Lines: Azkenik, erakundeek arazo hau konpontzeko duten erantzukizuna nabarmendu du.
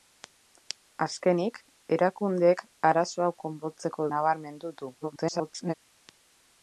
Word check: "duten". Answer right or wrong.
wrong